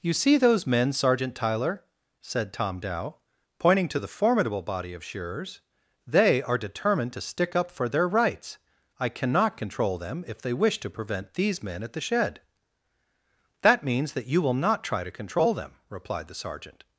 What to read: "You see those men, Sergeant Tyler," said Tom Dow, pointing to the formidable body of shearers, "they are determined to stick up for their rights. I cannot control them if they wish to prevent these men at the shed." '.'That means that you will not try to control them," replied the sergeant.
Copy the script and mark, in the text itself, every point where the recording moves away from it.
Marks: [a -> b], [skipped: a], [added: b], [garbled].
"You see those men, Sergeant Tyler," said Tom Dow, pointing to the formidable body of shearers, "they are determined to stick up for their rights. I cannot control them if they wish to prevent these men at the shed." '.'That means that you will not try to control them," replied the sergeant.